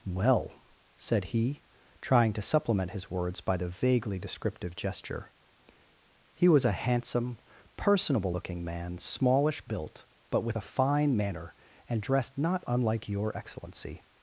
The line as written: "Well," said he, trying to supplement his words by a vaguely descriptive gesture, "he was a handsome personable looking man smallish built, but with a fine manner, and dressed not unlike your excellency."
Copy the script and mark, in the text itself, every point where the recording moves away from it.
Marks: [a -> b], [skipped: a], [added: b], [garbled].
"Well," said he, trying to supplement his words by [a -> the] vaguely descriptive gesture, "he was a handsome personable looking man smallish built, but with a fine manner, and dressed not unlike your excellency."